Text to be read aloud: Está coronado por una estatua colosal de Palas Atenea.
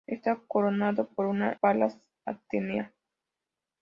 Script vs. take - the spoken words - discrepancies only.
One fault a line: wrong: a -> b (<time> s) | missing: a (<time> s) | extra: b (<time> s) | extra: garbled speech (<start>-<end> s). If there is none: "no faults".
missing: estatua colosal de (1.5 s)